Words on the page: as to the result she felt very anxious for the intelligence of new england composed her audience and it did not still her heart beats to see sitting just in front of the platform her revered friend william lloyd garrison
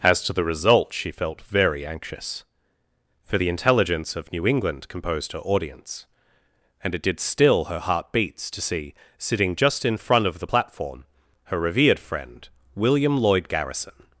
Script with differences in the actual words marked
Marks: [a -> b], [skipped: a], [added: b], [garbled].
as to the result she felt very anxious for the intelligence of new england composed her audience and it did [skipped: not] still her heart beats to see sitting just in front of the platform her revered friend william lloyd garrison